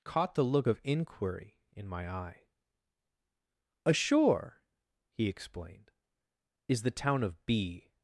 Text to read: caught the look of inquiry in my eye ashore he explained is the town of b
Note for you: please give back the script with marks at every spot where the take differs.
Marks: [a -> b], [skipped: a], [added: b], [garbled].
caught the look of inquiry in my eye ashore he explained is the town of b